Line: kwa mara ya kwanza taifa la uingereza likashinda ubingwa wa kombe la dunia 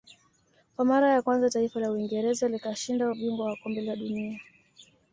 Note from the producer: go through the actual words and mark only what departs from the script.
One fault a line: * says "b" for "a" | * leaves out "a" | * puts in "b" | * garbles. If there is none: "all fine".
all fine